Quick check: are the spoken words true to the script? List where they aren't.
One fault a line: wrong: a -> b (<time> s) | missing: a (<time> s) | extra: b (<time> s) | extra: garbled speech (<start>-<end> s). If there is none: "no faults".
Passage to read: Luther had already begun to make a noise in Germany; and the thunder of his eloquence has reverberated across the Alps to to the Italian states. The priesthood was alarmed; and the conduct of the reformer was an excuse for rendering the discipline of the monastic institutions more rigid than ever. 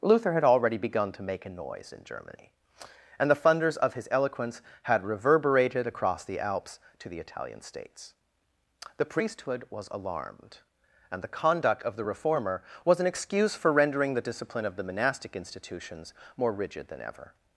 wrong: thunder -> thunders (3.4 s)
wrong: has -> had (4.8 s)
missing: to (7.1 s)